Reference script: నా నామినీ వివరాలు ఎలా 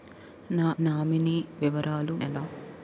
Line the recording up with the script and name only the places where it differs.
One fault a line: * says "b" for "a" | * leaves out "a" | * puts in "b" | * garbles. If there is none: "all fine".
all fine